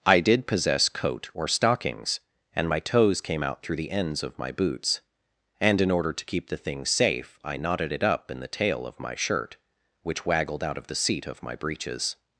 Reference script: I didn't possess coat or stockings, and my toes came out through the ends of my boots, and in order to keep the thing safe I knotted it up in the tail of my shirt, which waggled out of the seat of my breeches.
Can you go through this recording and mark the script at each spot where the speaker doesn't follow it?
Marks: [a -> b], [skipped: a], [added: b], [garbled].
I [didn't -> did] possess coat or stockings, and my toes came out through the ends of my boots, and in order to keep the thing safe I knotted it up in the tail of my shirt, which waggled out of the seat of my breeches.